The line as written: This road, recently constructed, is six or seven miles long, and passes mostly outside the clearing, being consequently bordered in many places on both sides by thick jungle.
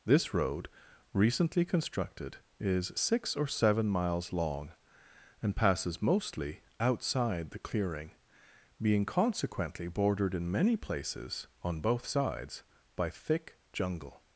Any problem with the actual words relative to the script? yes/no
no